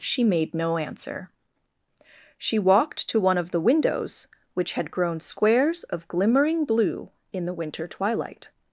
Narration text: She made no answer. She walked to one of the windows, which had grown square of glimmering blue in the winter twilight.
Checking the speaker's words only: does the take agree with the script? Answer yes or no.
no